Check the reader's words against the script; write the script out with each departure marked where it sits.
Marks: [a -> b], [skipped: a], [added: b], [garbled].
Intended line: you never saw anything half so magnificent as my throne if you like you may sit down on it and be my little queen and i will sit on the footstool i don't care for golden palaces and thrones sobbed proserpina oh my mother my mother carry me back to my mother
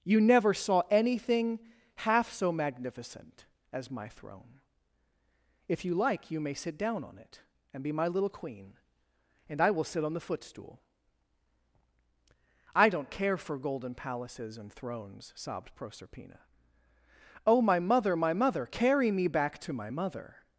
you never saw anything half so magnificent as my throne if you like you may sit down on it and be my little queen and i will sit on the footstool i don't care for golden palaces and thrones sobbed proserpina oh my mother my mother carry me back to my mother